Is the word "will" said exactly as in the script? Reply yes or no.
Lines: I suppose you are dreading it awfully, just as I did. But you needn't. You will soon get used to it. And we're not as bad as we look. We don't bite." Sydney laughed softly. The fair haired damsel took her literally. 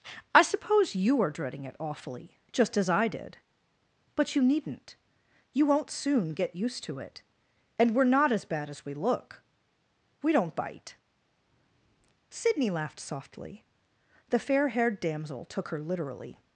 no